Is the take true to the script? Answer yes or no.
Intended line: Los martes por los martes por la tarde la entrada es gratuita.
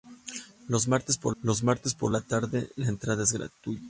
yes